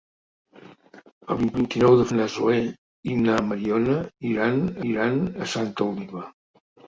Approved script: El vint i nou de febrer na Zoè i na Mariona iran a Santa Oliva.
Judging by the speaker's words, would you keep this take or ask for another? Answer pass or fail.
fail